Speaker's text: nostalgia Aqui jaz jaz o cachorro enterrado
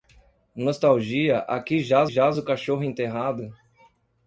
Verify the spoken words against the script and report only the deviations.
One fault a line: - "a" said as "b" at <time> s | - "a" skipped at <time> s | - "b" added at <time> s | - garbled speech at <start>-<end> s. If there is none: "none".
none